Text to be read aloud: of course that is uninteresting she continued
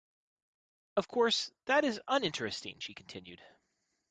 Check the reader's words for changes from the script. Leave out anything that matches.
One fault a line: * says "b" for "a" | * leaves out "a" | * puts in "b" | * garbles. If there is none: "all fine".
all fine